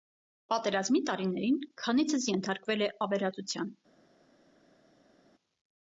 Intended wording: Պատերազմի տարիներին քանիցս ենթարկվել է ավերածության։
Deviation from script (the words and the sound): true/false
false